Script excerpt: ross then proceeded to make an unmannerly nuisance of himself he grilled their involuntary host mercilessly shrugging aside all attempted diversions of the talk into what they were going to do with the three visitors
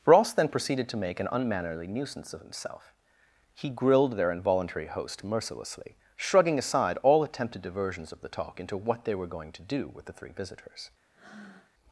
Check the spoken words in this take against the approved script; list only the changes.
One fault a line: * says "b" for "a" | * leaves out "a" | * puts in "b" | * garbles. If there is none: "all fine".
all fine